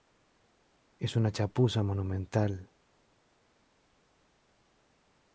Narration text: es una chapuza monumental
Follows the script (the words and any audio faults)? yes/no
yes